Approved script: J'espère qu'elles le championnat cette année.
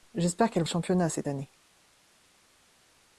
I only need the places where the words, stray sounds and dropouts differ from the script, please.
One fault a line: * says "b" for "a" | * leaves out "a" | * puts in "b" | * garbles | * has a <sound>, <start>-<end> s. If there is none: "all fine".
all fine